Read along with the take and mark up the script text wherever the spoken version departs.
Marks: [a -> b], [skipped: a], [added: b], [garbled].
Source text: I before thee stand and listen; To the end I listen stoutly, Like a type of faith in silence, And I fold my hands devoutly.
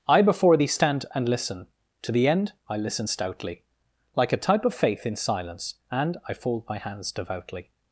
I before thee stand and listen; To the end I listen stoutly, Like a type of faith in silence, And I fold my hands devoutly.